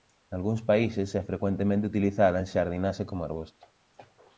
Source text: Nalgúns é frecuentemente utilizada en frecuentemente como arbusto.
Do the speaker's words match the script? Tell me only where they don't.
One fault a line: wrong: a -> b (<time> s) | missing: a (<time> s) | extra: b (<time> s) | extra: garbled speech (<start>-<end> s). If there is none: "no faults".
extra: países (0.7 s)
wrong: frecuentemente -> xardinaxe (2.5 s)